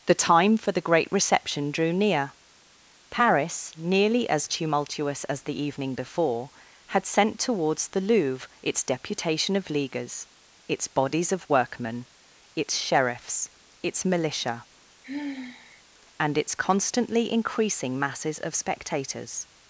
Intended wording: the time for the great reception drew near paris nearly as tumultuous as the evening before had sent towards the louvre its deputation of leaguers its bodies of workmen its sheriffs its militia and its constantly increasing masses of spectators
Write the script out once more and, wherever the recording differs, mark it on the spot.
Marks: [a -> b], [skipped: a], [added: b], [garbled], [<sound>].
the time for the great reception drew near paris nearly as tumultuous as the evening before had sent towards the louvre its deputation of leaguers its bodies of workmen its sheriffs its militia [sigh] and its constantly increasing masses of spectators